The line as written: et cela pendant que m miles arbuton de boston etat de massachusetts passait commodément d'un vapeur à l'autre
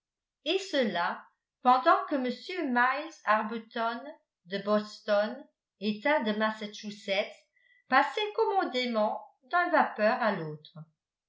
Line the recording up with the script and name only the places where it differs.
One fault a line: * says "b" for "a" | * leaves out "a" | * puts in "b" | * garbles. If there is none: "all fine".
all fine